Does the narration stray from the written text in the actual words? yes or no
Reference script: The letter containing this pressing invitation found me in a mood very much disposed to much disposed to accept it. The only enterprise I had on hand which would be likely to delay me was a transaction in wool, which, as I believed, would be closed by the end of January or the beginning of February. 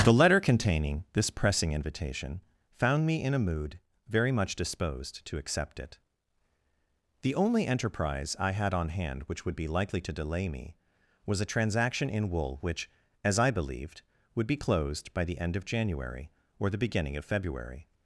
yes